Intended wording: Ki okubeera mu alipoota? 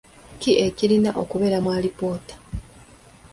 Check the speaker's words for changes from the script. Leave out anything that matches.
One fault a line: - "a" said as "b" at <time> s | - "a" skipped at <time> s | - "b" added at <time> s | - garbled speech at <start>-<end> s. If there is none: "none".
- "ekirina" added at 0.7 s